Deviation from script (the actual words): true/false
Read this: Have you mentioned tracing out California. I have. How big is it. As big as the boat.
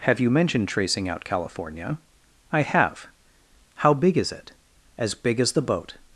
false